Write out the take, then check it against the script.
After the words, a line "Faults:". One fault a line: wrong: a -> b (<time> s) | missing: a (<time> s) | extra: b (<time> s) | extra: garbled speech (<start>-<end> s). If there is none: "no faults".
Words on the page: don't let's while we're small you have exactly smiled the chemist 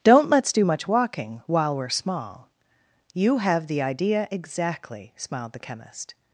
don't let's do much walking while we're small you have the idea exactly smiled the chemist
Faults:
extra: do much walking (0.5 s)
extra: the idea (3.7 s)